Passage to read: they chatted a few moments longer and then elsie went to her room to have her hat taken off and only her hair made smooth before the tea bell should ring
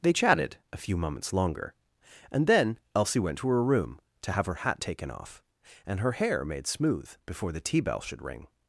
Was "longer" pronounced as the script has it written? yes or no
yes